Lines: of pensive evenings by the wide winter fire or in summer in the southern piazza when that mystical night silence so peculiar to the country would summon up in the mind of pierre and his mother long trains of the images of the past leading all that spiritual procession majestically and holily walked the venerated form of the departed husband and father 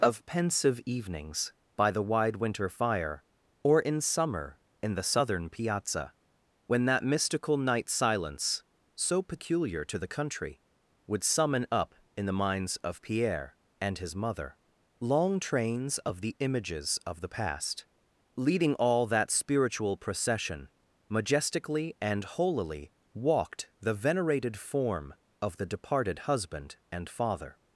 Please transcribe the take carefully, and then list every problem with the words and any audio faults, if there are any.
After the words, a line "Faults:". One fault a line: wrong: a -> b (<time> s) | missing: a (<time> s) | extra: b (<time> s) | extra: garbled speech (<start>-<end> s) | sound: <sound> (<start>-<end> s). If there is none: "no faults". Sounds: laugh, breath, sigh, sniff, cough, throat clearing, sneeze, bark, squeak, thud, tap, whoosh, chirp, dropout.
of pensive evenings by the wide winter fire or in summer in the southern piazza when that mystical night silence so peculiar to the country would summon up in the minds of pierre and his mother long trains of the images of the past leading all that spiritual procession majestically and holily walked the venerated form of the departed husband and father
Faults:
wrong: mind -> minds (12.4 s)